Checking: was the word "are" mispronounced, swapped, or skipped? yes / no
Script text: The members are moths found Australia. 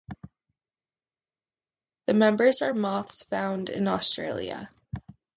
no